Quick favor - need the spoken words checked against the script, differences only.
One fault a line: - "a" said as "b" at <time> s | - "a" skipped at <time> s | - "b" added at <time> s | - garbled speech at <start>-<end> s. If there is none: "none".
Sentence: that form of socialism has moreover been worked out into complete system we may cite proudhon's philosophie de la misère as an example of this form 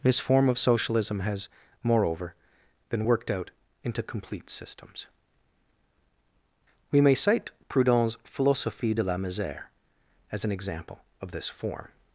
- "that" said as "this" at 0.0 s
- "system" said as "systems" at 4.5 s